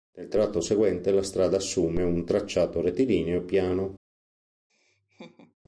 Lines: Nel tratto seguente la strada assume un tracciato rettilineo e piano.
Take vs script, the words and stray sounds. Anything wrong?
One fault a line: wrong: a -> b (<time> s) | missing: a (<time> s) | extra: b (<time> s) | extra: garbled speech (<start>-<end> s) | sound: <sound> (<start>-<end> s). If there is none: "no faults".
sound: laugh (4.7-5.5 s)